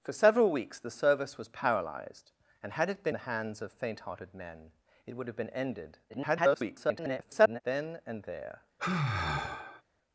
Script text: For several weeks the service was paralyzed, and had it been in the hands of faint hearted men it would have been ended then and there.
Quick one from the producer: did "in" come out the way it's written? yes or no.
no